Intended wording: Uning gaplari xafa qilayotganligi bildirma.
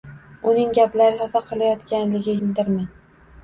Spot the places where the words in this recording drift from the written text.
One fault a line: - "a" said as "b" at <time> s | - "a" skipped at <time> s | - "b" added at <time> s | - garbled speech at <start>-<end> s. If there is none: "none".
none